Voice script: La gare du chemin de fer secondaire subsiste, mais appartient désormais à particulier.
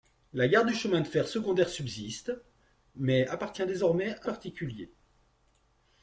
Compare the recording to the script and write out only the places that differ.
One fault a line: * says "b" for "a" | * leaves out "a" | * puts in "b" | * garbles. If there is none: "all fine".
all fine